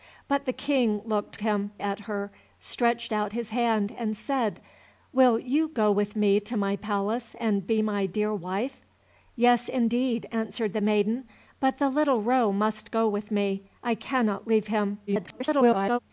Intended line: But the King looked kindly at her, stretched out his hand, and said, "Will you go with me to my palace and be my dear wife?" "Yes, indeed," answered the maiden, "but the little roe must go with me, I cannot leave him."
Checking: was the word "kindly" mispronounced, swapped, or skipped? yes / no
yes